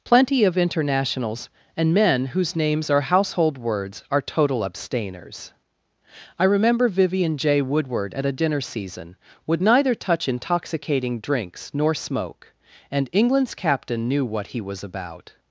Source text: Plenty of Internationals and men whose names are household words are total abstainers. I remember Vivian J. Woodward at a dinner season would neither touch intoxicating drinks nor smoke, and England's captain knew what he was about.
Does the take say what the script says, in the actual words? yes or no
yes